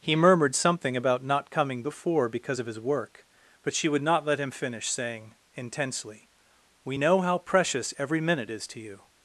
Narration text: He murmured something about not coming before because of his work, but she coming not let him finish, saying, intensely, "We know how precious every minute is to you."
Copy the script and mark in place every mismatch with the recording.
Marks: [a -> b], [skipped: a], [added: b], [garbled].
He murmured something about not coming before because of his work, but she [coming -> would] not let him finish, saying, intensely, "We know how precious every minute is to you."